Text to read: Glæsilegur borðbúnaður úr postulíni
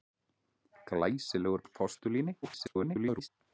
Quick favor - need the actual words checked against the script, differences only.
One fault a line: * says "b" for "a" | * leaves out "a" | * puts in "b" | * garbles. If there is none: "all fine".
* leaves out "borðbúnaður"
* garbles